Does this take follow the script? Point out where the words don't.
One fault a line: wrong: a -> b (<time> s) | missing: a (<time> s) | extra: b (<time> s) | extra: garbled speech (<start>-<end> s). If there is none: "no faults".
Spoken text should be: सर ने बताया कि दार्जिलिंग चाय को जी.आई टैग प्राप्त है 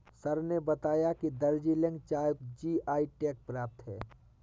missing: को (2.3 s)